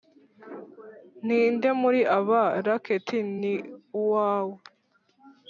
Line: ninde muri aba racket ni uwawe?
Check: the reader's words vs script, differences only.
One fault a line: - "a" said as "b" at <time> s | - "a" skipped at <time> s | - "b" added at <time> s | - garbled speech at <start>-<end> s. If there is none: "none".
none